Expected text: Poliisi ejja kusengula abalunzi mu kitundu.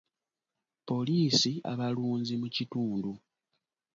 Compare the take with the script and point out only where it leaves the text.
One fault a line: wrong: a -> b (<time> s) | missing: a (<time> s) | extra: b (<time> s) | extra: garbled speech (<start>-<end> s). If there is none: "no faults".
missing: ejja kusengula (1.5 s)